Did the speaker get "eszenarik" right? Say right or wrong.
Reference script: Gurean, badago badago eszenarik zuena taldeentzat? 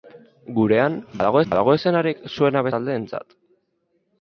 right